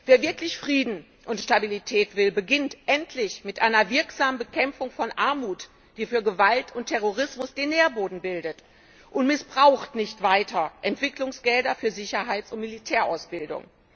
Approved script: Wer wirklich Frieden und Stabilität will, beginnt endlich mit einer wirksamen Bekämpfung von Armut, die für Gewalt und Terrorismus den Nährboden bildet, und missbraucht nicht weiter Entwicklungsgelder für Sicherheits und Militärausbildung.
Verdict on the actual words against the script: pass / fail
pass